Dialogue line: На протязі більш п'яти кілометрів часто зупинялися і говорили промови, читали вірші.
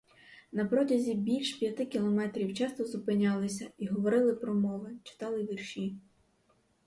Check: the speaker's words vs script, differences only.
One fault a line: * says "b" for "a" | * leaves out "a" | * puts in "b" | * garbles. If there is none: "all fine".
all fine